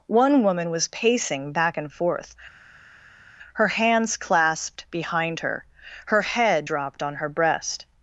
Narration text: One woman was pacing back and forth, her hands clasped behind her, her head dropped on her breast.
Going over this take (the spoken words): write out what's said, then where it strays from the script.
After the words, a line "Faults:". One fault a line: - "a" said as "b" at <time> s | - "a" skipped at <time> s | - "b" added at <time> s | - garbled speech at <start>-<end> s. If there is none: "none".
One woman was pacing back and forth, her hands clasped behind her, her head dropped on her breast.
Faults:
none